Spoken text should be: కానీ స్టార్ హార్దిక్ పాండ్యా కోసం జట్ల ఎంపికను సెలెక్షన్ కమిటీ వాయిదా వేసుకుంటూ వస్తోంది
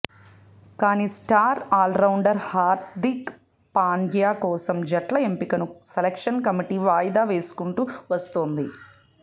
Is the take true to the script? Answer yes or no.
no